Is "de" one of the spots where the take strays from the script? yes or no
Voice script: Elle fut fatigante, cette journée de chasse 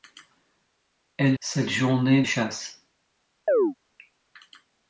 yes